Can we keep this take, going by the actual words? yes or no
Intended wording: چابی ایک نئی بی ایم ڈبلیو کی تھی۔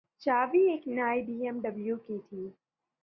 yes